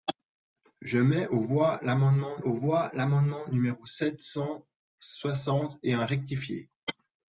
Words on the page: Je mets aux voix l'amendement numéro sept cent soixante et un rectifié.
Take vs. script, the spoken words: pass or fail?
fail